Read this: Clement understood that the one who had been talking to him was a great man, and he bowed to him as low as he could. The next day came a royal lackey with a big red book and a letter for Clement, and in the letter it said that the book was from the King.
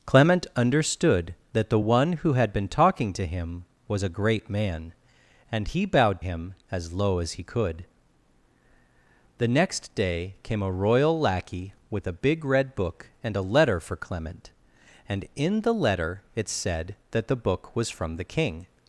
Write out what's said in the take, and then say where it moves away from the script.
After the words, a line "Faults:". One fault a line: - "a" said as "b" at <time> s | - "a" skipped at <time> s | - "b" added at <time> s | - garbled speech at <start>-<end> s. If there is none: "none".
Clement understood that the one who had been talking to him was a great man, and he bowed him as low as he could. The next day came a royal lackey with a big red book and a letter for Clement, and in the letter it said that the book was from the King.
Faults:
- "to" skipped at 6.2 s